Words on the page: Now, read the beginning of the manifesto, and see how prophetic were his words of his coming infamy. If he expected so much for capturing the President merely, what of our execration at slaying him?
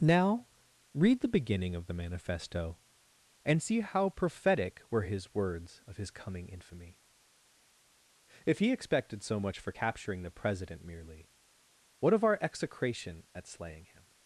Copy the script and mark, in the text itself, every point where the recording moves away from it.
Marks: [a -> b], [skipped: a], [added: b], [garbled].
Now, read the beginning of the manifesto, and see how prophetic were his words of his coming infamy. If he expected so much for capturing the President merely, what of our execration at slaying him?